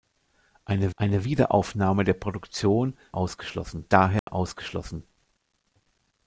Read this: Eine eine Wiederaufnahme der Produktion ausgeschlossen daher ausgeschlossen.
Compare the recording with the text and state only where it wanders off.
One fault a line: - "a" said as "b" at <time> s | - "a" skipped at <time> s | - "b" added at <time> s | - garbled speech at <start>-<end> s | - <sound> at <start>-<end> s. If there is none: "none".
- dropout at 4.2-4.3 s